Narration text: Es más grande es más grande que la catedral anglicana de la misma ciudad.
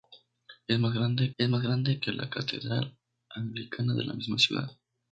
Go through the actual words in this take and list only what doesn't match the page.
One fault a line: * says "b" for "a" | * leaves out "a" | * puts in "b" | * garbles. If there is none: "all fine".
all fine